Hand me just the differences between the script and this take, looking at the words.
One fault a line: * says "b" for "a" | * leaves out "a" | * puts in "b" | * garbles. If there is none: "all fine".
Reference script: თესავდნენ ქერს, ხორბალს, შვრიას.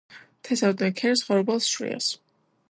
all fine